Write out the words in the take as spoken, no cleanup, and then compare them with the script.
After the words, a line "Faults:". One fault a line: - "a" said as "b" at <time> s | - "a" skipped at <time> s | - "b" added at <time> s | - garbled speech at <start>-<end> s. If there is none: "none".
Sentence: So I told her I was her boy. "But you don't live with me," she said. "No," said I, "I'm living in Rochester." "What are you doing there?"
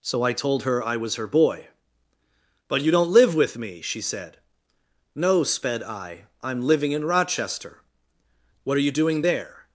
So I told her I was her boy. "But you don't live with me," she said. "No," sped I, "I'm living in Rochester." "What are you doing there?"
Faults:
- "said" said as "sped" at 5.4 s